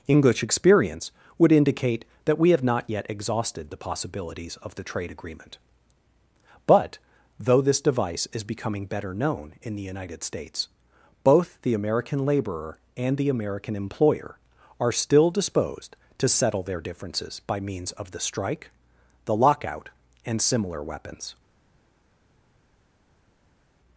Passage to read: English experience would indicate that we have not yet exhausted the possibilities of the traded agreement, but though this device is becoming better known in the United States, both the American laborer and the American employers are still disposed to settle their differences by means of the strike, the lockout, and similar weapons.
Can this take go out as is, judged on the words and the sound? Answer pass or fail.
fail